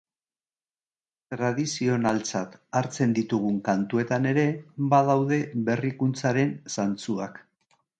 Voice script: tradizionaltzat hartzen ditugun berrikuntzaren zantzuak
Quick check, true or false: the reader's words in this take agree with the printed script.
false